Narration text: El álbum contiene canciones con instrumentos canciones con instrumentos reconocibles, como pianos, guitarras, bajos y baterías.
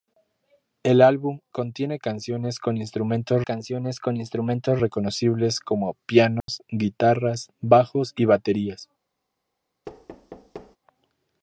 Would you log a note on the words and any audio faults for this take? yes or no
yes